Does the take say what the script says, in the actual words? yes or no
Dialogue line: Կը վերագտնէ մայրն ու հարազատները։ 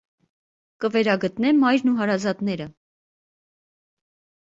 yes